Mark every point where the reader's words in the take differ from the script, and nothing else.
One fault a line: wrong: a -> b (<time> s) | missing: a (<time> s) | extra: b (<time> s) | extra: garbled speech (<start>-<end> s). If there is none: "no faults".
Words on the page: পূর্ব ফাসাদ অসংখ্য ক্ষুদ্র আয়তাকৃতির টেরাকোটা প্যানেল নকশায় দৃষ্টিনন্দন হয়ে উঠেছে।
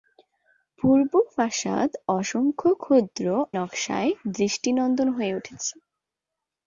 missing: আয়তাকৃতির টেরাকোটা প্যানেল (3.2 s)